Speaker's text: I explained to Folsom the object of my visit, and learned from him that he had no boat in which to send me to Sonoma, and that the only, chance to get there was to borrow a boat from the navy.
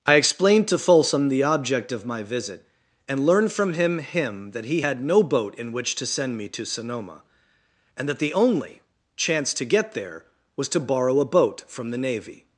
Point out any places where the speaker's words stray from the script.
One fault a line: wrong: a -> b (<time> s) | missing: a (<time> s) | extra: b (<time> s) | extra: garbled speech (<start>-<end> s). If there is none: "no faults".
extra: him (4.0 s)